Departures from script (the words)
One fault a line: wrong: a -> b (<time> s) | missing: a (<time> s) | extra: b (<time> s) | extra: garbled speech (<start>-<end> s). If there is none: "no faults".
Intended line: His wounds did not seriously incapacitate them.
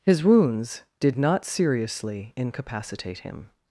wrong: them -> him (3.2 s)